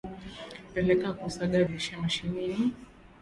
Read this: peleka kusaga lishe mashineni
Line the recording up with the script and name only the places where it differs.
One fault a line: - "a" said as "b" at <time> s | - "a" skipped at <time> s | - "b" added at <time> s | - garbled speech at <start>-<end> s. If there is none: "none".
none